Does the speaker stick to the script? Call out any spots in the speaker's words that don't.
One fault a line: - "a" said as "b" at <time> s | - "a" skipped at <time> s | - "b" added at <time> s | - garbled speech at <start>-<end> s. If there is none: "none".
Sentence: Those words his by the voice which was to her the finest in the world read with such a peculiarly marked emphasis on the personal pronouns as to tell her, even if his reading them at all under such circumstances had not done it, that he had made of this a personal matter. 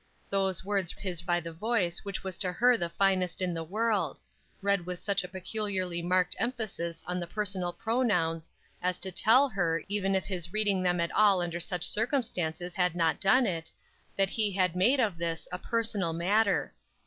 none